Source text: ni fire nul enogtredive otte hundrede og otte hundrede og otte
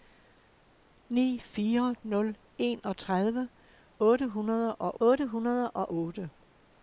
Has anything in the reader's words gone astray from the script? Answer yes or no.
no